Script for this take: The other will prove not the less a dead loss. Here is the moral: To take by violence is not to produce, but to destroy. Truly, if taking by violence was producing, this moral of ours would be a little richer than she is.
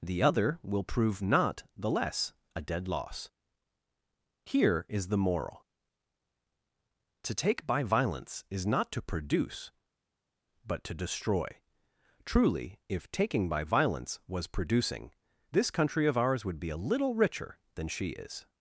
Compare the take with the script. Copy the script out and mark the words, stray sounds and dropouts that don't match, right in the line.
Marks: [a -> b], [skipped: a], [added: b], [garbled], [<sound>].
The other will prove not the less a dead loss. Here is the moral: To take by violence is not to produce, but to destroy. Truly, if taking by violence was producing, this [moral -> country] of ours would be a little richer than she is.